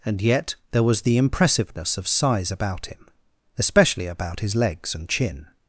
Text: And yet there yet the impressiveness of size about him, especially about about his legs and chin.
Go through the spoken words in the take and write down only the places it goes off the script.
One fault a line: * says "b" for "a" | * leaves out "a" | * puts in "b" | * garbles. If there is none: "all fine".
* says "was" for "yet"
* leaves out "about"